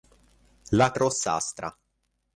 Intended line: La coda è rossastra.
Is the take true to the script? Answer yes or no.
no